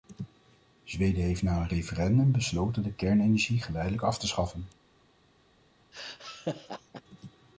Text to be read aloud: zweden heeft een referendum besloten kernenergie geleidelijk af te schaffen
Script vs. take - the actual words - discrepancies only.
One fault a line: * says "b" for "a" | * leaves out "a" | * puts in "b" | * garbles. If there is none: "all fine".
* puts in "na"
* puts in "de"